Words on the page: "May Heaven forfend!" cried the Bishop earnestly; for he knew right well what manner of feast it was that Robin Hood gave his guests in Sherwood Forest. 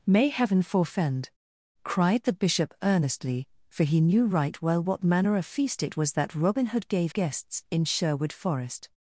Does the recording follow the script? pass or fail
fail